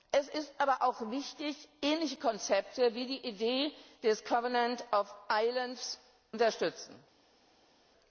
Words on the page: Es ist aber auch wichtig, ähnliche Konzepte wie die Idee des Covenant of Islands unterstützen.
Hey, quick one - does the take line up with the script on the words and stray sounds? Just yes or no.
yes